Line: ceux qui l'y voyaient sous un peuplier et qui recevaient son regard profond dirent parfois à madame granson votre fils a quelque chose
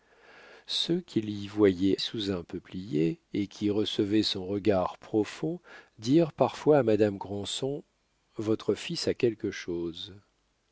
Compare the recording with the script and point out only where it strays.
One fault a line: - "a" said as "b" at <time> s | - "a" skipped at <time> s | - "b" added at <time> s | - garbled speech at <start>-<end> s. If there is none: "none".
none